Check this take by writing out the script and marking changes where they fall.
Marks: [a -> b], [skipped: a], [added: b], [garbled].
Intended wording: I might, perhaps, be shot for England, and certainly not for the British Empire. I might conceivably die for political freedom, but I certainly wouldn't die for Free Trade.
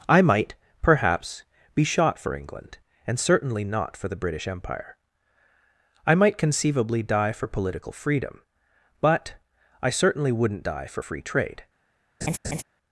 I might, perhaps, be shot for England, and certainly not for the British Empire. I might conceivably die for political freedom, but I certainly wouldn't die for Free Trade.